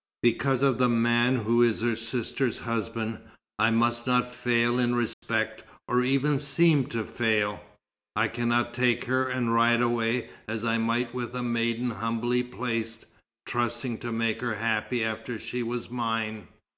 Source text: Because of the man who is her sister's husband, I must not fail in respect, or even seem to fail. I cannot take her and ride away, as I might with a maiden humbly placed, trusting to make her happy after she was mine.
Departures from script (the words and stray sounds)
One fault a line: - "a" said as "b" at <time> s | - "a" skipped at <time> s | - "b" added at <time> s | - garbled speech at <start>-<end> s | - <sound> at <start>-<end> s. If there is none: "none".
- dropout at 5.1-5.2 s